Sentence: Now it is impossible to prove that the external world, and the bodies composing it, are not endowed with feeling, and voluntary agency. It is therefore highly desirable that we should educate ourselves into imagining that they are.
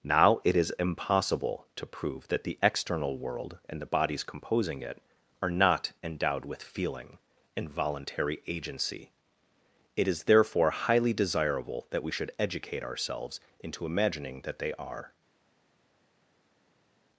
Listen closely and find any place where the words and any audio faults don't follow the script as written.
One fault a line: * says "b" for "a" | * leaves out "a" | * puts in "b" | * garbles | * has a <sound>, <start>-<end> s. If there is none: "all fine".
all fine